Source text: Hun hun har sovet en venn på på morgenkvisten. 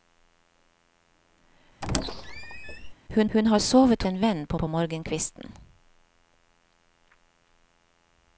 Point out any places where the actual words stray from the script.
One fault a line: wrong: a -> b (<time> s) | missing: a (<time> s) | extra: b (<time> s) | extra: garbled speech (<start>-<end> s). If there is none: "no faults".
no faults